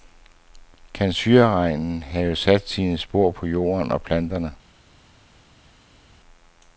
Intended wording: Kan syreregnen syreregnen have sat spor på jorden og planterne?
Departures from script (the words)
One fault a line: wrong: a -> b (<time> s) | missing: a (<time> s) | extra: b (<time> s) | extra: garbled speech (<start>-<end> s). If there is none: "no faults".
missing: syreregnen (2.0 s)
extra: sine (2.7 s)